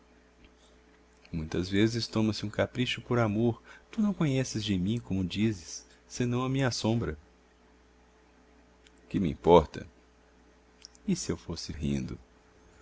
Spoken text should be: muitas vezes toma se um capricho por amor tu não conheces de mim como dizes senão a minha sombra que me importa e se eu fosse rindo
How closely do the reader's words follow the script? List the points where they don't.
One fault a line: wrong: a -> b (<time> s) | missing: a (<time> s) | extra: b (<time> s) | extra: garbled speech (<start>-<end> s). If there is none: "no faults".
no faults